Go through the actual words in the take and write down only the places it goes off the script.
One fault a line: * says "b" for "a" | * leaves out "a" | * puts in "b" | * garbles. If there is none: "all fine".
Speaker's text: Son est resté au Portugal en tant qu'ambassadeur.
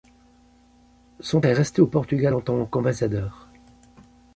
all fine